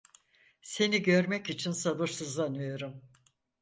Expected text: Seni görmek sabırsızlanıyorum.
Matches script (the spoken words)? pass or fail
fail